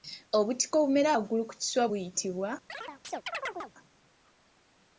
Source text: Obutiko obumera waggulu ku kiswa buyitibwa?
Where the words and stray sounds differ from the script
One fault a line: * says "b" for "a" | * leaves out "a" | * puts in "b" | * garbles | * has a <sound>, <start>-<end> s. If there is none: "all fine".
* has a chirp, 2.7-3.7 s